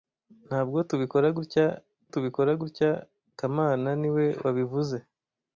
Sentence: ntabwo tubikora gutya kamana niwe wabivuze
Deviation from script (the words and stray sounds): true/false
true